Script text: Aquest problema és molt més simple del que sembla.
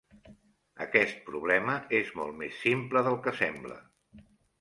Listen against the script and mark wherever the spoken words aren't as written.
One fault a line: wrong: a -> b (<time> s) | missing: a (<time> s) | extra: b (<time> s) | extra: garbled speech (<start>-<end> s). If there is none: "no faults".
no faults